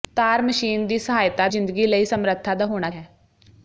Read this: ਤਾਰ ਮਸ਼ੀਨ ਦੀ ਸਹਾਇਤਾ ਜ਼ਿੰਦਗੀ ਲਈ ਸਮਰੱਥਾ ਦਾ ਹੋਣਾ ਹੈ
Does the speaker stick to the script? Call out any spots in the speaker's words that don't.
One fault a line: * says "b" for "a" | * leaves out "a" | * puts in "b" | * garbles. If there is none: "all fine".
all fine